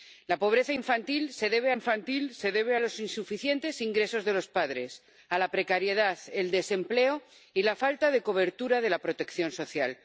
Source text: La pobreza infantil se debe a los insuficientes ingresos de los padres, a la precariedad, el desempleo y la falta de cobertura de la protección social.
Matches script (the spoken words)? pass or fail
fail